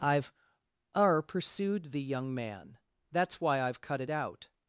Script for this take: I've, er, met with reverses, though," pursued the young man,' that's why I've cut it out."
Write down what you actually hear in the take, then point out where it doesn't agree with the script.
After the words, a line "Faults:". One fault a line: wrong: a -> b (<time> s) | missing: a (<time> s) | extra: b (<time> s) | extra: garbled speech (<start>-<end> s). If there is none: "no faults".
I've, er," pursued the young man,' that's why I've cut it out."
Faults:
missing: met with reverses though (1.2 s)